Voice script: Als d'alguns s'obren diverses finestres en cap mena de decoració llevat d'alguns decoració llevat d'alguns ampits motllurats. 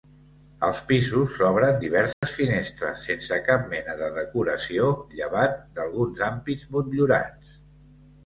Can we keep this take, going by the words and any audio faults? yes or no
no